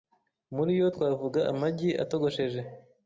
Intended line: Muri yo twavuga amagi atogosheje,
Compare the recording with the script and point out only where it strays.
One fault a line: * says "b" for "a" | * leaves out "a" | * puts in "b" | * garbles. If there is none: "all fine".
all fine